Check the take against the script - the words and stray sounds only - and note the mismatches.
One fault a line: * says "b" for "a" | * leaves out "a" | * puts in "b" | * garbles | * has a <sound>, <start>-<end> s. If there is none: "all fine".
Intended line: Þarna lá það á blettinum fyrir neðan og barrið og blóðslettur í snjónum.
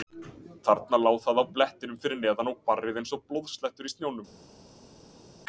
* puts in "eins"